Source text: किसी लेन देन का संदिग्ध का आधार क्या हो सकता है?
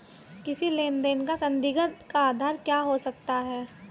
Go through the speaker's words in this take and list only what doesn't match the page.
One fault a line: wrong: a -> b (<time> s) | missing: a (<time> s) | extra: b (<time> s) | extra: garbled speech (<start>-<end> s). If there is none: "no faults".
no faults